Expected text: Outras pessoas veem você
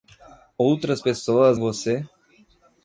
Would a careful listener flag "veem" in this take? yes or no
yes